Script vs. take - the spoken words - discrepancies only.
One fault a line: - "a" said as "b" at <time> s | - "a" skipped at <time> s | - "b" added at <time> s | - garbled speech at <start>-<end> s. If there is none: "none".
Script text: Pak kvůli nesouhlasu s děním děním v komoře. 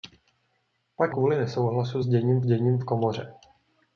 none